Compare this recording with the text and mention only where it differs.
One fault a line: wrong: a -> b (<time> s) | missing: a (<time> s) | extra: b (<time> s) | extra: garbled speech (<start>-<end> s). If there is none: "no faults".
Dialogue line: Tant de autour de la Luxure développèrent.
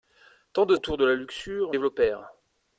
no faults